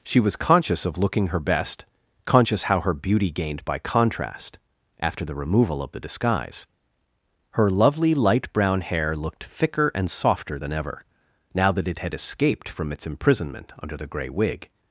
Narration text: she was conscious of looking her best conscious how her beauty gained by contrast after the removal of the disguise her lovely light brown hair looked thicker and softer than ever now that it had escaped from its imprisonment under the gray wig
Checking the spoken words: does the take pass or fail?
pass